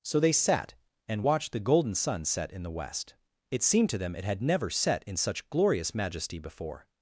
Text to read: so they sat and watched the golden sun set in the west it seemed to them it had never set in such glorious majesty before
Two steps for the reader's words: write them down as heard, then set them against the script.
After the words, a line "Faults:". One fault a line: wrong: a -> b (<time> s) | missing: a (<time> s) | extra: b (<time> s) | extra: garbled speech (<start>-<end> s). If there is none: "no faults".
so they sat and watched the golden sun set in the west it seemed to them it had never set in such glorious majesty before
Faults:
no faults